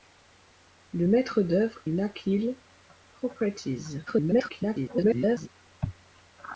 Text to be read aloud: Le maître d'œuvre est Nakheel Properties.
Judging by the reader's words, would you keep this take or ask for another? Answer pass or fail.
fail